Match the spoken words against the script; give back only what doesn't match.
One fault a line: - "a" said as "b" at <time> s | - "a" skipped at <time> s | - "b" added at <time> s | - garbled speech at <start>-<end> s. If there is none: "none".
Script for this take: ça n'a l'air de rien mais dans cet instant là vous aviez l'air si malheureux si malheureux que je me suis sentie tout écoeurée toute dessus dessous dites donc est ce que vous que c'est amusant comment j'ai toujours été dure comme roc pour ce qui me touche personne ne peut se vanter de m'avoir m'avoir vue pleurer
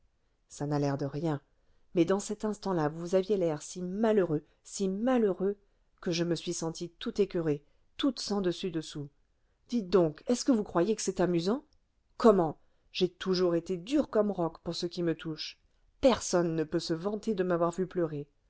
- "sens" added at 8.2 s
- "croyez" added at 10.6 s
- "m'avoir" skipped at 17.7 s